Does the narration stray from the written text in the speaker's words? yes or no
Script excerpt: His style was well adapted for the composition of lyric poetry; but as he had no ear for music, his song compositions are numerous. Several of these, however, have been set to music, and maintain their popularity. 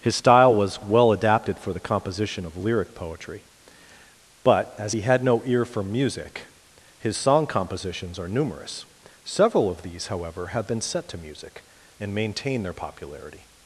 no